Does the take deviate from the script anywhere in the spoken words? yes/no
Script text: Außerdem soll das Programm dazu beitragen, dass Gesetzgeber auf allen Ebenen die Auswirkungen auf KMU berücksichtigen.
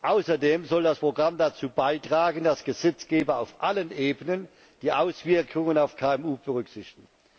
no